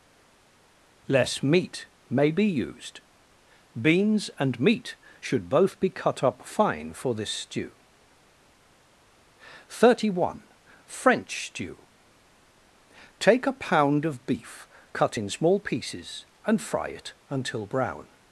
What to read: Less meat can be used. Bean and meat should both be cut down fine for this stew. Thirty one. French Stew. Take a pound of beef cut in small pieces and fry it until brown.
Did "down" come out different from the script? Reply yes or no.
yes